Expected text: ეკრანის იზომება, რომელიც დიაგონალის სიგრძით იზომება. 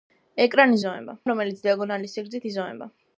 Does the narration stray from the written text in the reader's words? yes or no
no